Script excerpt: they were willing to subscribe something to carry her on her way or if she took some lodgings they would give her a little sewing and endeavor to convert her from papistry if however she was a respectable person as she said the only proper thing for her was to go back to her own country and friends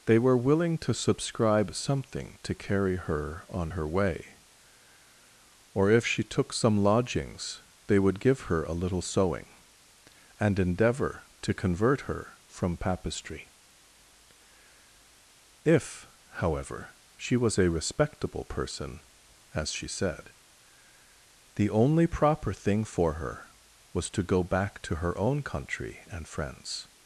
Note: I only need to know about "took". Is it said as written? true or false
true